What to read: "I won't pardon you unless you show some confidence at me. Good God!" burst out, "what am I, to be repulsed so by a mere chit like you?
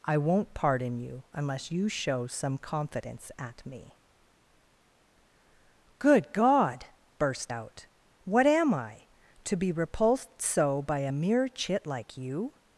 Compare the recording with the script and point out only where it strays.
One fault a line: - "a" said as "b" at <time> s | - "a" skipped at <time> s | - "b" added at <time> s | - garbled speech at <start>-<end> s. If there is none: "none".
none